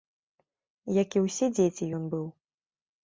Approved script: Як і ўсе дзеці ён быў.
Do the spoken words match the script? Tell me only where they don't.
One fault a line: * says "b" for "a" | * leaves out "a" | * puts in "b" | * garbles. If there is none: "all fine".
all fine